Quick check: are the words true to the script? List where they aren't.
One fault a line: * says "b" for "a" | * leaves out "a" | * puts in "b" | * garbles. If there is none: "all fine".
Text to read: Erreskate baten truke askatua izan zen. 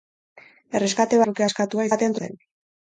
* leaves out "baten"
* says "baten" for "izan"